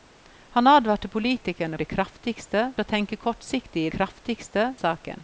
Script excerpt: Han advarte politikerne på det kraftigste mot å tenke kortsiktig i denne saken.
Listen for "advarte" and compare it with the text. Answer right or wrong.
right